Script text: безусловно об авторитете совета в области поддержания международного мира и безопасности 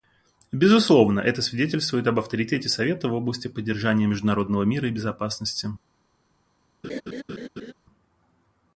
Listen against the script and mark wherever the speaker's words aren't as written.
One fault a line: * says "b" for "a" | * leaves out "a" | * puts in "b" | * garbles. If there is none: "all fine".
* puts in "это свидетельствует"